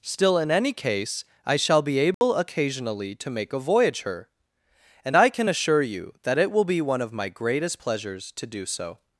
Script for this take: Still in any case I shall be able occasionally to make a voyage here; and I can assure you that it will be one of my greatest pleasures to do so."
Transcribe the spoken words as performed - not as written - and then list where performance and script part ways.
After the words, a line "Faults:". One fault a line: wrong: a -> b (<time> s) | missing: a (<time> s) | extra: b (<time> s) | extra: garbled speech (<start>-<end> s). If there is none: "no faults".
Still in any case I shall be able occasionally to make a voyage her; and I can assure you that it will be one of my greatest pleasures to do so."
Faults:
wrong: here -> her (4.0 s)